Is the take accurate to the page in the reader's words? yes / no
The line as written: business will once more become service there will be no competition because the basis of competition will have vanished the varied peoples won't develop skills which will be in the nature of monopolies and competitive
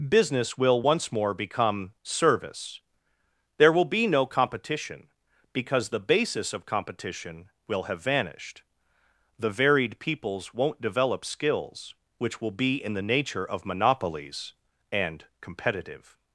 yes